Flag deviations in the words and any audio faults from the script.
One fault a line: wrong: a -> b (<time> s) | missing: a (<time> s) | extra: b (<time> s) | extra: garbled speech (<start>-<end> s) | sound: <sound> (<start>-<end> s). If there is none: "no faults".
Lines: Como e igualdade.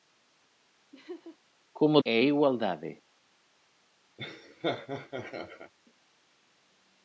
sound: laugh (0.9-1.4 s)
sound: laugh (4.2-5.7 s)